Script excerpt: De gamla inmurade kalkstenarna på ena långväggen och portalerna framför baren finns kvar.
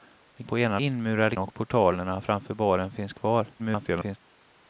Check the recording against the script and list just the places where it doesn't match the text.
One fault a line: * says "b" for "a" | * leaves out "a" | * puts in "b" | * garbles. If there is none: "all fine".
* leaves out "gamla inmurade kalkstenarna"
* says "inmurade" for "långväggen"
* garbles